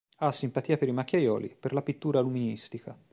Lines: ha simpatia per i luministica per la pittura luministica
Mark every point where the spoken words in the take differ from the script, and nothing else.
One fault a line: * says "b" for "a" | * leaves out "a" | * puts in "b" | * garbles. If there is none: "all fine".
* says "macchiaioli" for "luministica"